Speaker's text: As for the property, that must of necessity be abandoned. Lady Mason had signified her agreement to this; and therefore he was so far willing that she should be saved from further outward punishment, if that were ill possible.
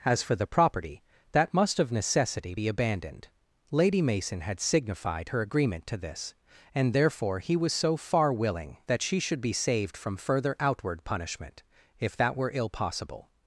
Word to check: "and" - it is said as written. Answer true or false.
true